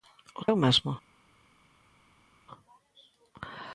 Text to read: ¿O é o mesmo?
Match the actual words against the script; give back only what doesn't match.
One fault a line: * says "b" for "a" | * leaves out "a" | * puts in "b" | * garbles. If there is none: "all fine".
all fine